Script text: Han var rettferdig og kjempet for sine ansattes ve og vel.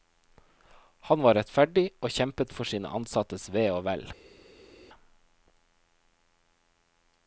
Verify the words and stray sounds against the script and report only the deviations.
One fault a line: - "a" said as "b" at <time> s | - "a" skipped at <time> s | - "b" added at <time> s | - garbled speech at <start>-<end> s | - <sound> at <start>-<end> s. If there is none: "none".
none